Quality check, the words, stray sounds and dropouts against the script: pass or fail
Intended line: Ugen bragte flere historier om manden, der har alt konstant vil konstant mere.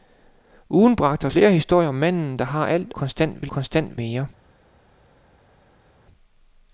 pass